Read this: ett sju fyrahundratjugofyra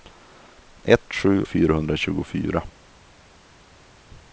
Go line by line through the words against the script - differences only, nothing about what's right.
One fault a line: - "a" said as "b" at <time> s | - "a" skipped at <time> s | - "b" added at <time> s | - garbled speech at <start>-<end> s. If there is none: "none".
none